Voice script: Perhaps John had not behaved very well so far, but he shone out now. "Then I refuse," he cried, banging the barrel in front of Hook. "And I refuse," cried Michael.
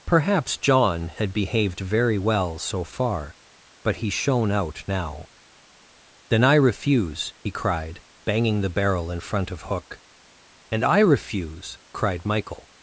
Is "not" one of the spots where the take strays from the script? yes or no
yes